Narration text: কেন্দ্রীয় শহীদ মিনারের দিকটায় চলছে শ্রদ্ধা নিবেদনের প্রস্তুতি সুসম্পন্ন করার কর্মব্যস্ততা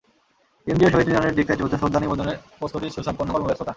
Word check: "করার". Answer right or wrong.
wrong